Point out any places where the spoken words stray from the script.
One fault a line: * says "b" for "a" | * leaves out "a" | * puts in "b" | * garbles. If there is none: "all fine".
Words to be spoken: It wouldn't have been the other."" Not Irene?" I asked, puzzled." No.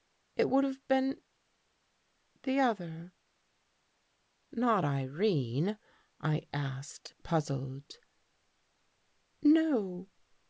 * says "would" for "wouldn't"